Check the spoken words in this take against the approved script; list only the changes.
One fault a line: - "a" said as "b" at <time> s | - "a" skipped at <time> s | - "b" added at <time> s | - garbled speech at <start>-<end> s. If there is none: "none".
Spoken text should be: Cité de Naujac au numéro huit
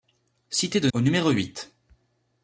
- "Naujac" skipped at 0.9 s